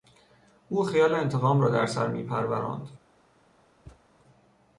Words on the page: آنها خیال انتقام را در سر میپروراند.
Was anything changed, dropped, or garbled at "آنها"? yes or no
yes